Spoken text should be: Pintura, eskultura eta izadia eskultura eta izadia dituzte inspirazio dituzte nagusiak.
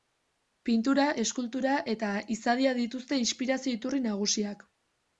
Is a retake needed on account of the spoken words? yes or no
yes